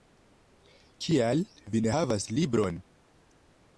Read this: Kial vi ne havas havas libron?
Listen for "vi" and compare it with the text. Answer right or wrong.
right